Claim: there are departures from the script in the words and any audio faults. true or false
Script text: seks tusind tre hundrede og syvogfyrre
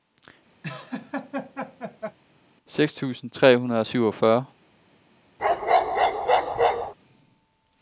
true